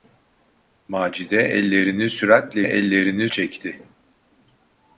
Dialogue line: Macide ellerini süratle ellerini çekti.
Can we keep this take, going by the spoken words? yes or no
yes